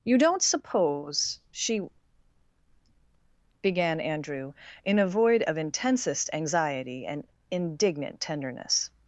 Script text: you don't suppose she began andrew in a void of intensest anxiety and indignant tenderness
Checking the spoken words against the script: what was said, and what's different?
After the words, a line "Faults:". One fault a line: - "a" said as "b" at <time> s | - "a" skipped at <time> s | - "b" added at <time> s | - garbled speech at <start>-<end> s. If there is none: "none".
you don't suppose she began andrew in a void of intensest anxiety and indignant tenderness
Faults:
none